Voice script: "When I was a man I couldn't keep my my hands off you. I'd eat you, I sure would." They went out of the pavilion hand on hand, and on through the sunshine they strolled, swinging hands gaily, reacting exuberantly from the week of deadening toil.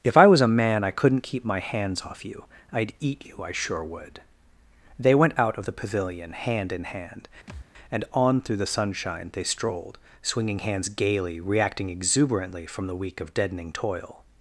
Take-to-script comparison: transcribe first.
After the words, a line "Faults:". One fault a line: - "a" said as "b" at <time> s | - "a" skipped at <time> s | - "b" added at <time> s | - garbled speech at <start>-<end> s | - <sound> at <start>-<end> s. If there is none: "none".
"If I was a man I couldn't keep my hands off you. I'd eat you, I sure would." They went out of the pavilion hand in hand, and on through the sunshine they strolled, swinging hands gaily, reacting exuberantly from the week of deadening toil.
Faults:
- "When" said as "If" at 0.0 s
- "my" skipped at 1.6 s
- "on" said as "in" at 6.7 s
- thud at 7.5-7.7 s